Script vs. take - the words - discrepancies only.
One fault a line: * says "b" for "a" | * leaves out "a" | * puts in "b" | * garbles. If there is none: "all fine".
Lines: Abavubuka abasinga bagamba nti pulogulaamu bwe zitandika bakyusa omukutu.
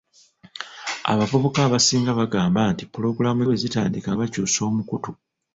all fine